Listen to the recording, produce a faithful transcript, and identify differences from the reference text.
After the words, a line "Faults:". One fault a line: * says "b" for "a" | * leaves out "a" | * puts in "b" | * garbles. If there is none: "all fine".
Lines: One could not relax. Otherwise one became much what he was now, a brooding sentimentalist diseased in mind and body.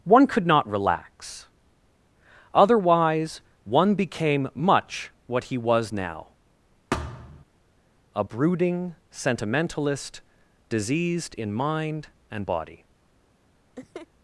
One could not relax. Otherwise one became much what he was now, a brooding sentimentalist diseased in mind and body.
Faults:
all fine